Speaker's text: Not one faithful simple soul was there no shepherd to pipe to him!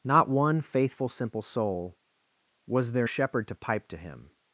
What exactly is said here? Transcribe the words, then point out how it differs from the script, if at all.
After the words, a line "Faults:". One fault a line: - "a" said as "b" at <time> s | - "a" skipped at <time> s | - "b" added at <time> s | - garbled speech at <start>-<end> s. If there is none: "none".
Not one faithful simple soul was there shepherd to pipe to him!
Faults:
- "no" skipped at 3.1 s